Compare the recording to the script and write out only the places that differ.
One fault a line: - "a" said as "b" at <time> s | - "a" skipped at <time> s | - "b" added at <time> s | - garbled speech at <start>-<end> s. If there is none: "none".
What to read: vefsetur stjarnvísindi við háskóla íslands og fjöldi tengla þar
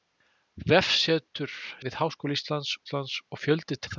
- "stjarnvísindi" skipped at 1.5 s
- "íslands" added at 2.8 s
- "tengla" skipped at 3.8 s